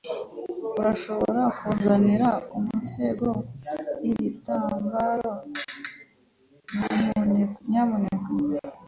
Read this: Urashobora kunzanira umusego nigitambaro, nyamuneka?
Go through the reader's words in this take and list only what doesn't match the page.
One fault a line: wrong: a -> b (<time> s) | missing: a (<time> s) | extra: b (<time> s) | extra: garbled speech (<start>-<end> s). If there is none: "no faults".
no faults